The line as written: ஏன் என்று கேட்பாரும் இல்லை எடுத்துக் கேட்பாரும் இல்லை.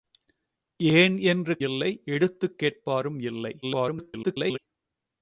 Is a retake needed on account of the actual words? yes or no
yes